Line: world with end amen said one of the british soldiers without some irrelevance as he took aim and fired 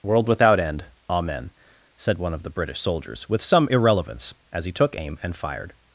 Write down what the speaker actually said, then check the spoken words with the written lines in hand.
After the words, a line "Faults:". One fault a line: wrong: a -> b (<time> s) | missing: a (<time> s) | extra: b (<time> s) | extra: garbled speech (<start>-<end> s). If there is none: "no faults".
world without end amen said one of the british soldiers with some irrelevance as he took aim and fired
Faults:
wrong: with -> without (0.3 s)
wrong: without -> with (3.3 s)